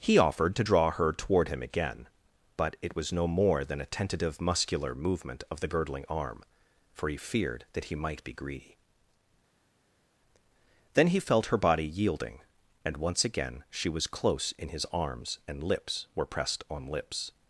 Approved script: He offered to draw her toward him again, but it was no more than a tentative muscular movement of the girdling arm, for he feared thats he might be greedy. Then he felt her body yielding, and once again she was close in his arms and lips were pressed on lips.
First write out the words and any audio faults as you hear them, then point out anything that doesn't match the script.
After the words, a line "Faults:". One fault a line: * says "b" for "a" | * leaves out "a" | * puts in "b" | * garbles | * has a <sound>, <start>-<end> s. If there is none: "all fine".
He offered to draw her toward him again, but it was no more than a tentative muscular movement of the girdling arm, for he feared that he might be greedy. Then he felt her body yielding, and once again she was close in his arms and lips were pressed on lips.
Faults:
* says "that" for "thats"